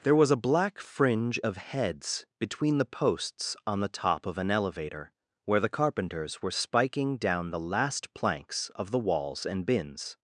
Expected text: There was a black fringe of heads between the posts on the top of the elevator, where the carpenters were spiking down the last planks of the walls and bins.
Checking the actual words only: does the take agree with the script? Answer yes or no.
no